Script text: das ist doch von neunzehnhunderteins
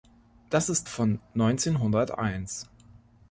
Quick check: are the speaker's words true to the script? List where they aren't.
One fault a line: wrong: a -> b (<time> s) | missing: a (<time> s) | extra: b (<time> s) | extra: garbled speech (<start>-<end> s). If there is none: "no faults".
missing: doch (0.9 s)